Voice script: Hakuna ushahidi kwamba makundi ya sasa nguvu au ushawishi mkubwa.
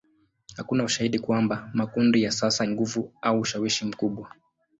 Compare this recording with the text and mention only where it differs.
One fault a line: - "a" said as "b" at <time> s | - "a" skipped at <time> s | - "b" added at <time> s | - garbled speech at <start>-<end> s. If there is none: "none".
none